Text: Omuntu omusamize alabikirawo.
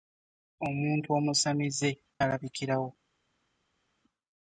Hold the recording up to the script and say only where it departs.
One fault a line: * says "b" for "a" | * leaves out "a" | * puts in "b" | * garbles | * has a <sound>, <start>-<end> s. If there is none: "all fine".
all fine